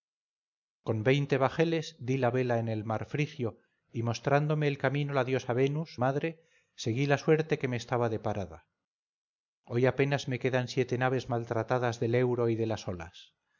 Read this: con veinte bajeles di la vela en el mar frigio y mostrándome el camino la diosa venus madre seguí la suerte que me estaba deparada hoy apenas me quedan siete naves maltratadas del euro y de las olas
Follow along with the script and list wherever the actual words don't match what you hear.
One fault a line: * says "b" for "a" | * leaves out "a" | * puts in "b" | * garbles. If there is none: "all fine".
all fine